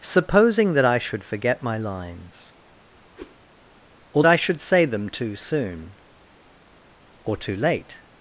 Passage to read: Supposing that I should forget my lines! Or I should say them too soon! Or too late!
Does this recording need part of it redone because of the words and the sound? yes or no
yes